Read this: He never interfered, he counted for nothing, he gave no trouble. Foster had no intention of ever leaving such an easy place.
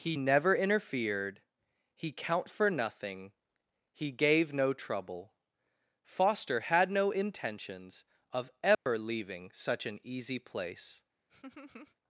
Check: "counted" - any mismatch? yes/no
yes